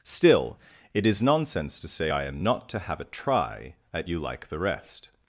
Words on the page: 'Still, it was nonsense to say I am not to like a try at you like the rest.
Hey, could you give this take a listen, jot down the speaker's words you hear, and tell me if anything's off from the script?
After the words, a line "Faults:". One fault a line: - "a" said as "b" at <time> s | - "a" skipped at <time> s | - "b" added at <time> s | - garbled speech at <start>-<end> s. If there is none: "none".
'Still, it is nonsense to say I am not to have a try at you like the rest.
Faults:
- "was" said as "is" at 1.1 s
- "like" said as "have" at 2.8 s